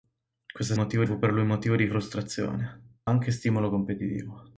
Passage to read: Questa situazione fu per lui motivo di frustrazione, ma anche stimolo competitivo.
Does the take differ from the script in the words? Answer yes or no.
yes